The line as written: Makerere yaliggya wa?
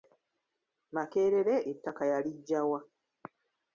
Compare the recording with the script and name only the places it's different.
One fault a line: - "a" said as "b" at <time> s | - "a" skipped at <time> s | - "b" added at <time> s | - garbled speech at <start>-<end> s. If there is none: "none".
- "ettaka" added at 1.7 s